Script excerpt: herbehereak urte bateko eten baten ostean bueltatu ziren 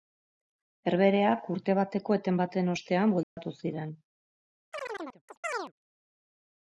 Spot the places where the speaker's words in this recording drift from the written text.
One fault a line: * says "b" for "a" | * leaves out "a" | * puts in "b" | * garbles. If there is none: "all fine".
all fine